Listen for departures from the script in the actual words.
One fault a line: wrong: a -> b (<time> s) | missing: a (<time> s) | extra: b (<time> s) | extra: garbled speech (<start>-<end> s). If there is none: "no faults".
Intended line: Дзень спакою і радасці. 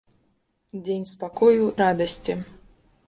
missing: і (1.7 s)